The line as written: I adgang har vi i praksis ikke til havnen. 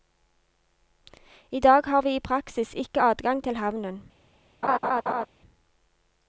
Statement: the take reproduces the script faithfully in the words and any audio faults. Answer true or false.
false